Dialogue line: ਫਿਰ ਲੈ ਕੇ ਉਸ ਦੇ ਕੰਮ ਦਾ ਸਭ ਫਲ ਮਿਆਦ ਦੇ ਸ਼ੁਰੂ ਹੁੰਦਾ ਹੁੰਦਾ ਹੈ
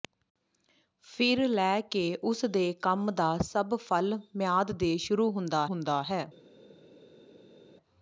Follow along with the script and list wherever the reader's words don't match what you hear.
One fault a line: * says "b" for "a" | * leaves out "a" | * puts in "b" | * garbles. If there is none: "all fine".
all fine